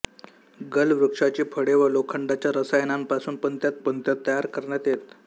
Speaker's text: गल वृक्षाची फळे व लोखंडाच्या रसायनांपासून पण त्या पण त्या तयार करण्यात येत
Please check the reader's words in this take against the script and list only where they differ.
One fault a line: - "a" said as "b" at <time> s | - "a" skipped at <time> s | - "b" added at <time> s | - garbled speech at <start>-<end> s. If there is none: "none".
none